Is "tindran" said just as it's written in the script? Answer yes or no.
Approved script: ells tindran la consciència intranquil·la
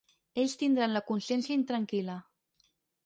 yes